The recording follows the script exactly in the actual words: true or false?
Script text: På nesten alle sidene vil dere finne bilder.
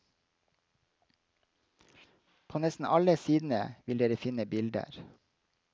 true